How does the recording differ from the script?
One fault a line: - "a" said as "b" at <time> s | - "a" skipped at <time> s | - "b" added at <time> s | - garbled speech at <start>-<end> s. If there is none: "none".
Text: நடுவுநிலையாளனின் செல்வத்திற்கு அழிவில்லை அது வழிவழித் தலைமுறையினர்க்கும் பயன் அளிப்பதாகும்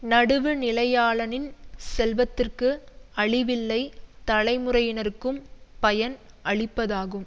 - "அது வழிவழித்" skipped at 3.8 s